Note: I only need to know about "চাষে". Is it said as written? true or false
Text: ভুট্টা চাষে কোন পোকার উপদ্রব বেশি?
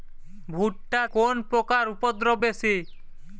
false